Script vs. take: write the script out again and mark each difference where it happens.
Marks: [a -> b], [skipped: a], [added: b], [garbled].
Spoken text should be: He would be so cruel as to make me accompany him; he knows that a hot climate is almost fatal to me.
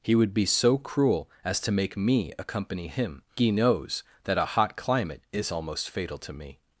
He would be so cruel as to make me accompany him; he knows that a hot climate is almost fatal to me.